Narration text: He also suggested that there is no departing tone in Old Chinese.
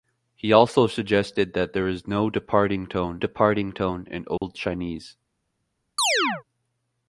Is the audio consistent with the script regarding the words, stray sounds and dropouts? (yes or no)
no